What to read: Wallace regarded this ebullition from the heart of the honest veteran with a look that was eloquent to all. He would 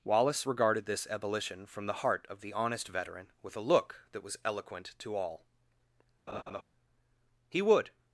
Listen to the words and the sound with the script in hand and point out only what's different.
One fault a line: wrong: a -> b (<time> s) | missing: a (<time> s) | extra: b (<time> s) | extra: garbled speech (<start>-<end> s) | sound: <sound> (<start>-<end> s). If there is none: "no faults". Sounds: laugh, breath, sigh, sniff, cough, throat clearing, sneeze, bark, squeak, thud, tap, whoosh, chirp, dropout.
sound: laugh (6.3-6.6 s)